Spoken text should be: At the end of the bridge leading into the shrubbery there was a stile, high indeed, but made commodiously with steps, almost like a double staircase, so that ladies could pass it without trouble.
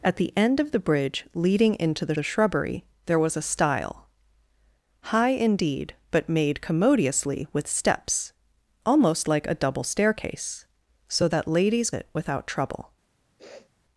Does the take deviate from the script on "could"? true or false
true